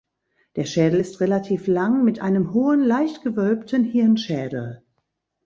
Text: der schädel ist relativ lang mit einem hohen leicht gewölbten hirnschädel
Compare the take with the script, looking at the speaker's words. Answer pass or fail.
pass